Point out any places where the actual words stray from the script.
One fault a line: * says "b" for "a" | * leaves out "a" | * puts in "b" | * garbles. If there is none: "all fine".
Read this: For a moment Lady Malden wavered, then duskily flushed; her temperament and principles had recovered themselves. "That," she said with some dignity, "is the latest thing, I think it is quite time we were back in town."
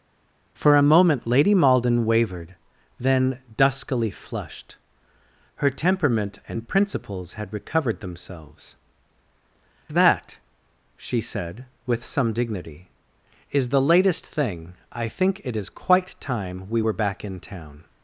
all fine